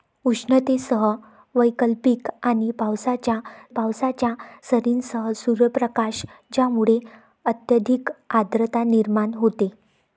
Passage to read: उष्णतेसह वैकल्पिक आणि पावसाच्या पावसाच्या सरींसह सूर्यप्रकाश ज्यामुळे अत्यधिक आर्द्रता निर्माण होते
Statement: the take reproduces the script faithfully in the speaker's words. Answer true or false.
true